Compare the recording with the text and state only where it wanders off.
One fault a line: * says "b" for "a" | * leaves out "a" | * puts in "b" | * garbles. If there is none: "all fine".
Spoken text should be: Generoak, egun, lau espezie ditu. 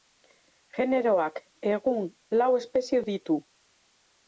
all fine